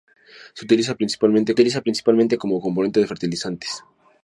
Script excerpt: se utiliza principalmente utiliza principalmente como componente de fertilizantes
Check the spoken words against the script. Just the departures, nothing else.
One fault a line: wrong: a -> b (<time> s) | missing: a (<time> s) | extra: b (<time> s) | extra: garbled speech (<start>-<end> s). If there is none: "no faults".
no faults